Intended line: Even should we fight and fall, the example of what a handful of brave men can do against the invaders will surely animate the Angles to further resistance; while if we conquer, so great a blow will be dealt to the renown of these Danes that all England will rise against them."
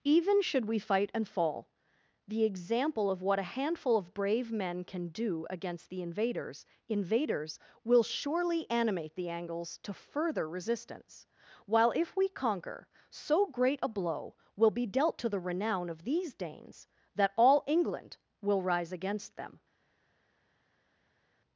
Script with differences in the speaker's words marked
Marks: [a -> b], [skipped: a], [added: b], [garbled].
Even should we fight and fall, the example of what a handful of brave men can do against the invaders [added: invaders] will surely animate the Angles to further resistance; while if we conquer, so great a blow will be dealt to the renown of these Danes that all England will rise against them."